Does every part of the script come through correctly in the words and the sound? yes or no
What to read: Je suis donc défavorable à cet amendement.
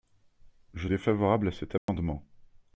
no